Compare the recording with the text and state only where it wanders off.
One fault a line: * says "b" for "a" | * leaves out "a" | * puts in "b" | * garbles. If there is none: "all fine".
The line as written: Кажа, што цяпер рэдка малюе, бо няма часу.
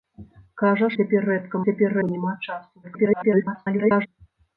* leaves out "што"
* says "цяпер" for "малюе"
* garbles